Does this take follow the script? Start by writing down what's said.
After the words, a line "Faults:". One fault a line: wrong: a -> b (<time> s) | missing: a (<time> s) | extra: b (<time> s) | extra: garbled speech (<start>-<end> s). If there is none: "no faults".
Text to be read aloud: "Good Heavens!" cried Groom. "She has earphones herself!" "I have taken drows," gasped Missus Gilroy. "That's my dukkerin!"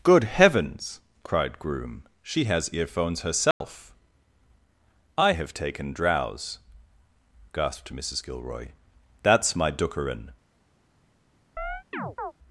"Good Heavens!" cried Groom. "She has earphones herself!" "I have taken drows," gasped Missus Gilroy. "That's my dukkerin!"
Faults:
no faults